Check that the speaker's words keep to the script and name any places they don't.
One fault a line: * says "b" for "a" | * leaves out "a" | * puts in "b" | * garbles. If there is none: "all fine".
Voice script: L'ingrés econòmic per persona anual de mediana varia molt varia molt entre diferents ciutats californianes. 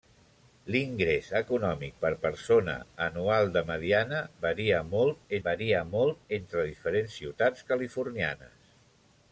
all fine